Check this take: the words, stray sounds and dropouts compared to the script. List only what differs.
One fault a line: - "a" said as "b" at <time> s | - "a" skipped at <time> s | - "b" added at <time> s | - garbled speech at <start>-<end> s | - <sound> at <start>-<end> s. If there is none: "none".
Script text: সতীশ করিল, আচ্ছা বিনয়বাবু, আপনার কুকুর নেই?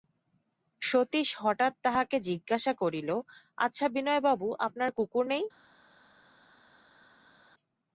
- "হঠাৎ তাহাকে জিজ্ঞাসা" added at 1.4 s